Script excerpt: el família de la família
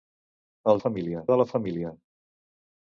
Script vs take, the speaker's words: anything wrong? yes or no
no